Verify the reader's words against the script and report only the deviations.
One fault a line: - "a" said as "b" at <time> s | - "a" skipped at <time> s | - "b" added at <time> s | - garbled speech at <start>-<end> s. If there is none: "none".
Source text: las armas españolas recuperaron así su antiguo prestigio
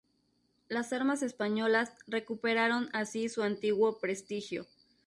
none